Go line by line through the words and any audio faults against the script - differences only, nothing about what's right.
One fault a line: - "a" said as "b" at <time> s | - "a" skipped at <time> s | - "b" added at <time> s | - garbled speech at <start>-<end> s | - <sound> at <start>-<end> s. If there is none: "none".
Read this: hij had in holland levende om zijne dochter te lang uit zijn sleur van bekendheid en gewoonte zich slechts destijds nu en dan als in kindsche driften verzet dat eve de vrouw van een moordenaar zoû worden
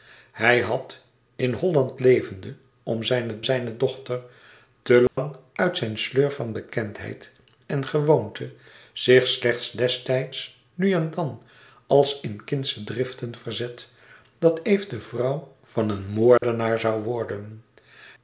- "zijne" added at 3.4 s
- dropout at 5.1-5.2 s
- dropout at 16.4-16.4 s